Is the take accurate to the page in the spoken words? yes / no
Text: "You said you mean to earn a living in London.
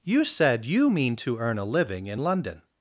yes